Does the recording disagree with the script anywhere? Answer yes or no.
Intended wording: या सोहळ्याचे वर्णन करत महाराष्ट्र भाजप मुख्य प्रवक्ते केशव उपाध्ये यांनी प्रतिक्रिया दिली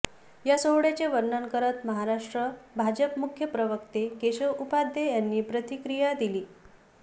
no